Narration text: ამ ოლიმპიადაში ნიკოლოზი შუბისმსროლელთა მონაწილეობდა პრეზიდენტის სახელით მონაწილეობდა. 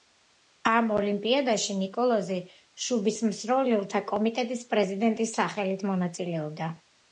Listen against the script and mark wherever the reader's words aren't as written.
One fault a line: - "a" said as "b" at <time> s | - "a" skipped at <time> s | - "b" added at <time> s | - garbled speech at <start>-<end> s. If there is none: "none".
- "მონაწილეობდა" said as "კომიტეტის" at 4.2 s